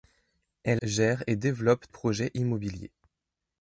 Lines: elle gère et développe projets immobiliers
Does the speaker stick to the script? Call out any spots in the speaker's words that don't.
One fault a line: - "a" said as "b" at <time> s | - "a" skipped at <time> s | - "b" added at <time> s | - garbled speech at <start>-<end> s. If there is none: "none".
none